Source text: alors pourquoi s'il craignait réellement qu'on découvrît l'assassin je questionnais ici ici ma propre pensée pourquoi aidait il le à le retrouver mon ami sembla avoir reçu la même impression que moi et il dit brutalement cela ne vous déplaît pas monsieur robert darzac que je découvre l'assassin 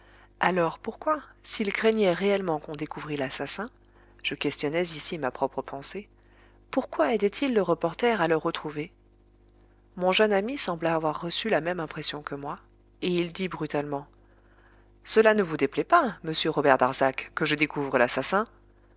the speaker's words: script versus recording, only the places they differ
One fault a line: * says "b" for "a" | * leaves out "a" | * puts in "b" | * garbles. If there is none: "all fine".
* leaves out "ici"
* puts in "reporter"
* puts in "jeune"